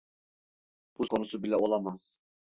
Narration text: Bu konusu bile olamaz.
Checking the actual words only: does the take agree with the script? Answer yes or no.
yes